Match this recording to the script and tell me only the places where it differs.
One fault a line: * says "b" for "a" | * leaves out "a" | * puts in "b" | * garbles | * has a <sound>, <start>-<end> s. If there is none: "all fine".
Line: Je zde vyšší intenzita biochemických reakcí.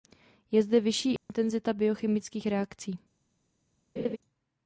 * has a dropout, 1.2-1.3 s
* has a laugh, 4.0-4.2 s